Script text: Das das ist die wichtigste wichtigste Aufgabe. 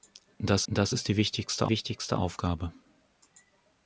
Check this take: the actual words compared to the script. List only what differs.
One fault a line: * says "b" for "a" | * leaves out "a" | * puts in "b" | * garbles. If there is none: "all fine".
all fine